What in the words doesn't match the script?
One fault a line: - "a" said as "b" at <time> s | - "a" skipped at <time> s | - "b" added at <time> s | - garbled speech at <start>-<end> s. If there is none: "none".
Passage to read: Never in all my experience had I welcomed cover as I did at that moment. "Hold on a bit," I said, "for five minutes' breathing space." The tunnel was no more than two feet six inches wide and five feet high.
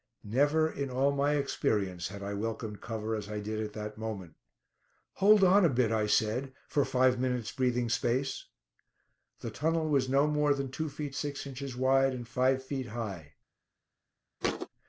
none